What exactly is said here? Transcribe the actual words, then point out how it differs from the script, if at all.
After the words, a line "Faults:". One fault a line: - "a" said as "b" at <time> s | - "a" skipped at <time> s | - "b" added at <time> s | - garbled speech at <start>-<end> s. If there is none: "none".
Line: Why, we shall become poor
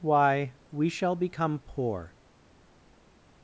Why, we shall become poor
Faults:
none